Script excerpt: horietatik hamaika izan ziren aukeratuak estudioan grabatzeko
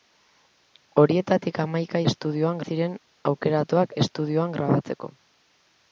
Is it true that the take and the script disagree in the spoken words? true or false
true